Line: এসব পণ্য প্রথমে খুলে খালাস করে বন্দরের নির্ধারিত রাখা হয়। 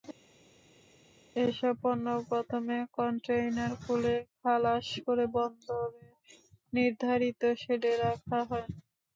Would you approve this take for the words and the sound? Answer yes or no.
no